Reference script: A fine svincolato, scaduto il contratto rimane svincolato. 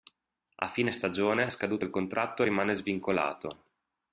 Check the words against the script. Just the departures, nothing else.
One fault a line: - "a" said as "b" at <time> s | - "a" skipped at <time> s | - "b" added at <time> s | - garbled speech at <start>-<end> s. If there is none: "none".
- "svincolato" said as "stagione" at 0.9 s